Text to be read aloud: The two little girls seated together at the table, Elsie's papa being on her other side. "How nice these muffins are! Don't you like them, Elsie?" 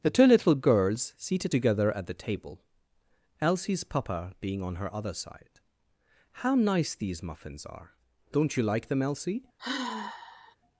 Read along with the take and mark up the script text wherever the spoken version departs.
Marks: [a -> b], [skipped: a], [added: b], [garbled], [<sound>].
The two little girls seated together at the table, Elsie's papa being on her other side. "How nice these muffins are! Don't you like them, Elsie?" [sigh]